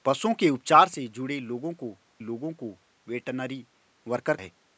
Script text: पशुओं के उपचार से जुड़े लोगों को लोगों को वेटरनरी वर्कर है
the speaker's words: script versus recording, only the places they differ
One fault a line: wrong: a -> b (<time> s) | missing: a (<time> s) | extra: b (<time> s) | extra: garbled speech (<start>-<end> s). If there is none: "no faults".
no faults